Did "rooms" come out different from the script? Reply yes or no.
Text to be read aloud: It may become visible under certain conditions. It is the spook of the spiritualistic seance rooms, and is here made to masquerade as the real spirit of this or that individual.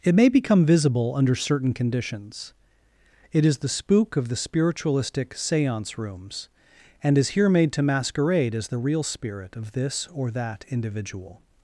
no